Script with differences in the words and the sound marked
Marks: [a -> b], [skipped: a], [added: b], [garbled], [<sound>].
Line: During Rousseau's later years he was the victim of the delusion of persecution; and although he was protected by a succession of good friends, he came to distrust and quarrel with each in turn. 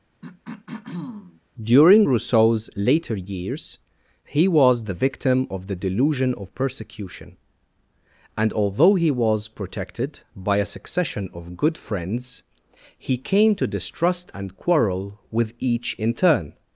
[throat clearing] During Rousseau's later years he was the victim of the delusion of persecution; and although he was protected by a succession of good friends, he came to distrust and quarrel with each in turn.